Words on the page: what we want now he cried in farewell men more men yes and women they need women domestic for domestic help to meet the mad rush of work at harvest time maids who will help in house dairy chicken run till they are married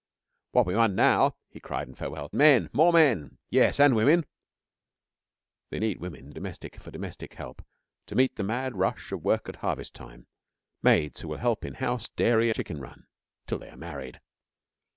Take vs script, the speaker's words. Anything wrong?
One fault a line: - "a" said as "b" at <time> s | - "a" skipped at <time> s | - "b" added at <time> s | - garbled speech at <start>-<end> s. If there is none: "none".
none